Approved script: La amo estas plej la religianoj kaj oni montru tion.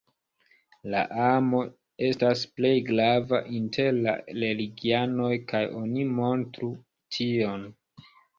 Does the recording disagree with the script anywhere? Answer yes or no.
yes